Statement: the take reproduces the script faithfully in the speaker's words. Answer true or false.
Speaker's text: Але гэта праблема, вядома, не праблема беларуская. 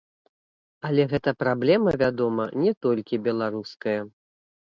false